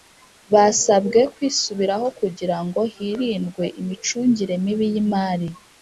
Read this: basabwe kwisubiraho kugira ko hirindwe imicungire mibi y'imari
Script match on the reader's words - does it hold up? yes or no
no